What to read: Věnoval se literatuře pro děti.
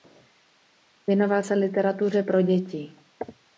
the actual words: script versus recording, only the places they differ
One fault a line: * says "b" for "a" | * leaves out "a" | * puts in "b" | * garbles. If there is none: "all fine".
all fine